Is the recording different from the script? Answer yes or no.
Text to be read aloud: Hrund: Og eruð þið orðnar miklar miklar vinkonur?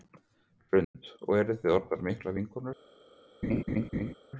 yes